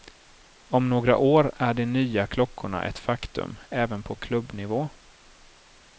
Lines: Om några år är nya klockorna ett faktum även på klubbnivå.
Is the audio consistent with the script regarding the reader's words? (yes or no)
no